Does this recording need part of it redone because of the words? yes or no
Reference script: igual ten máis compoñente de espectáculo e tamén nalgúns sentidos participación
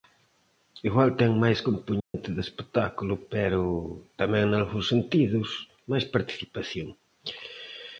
yes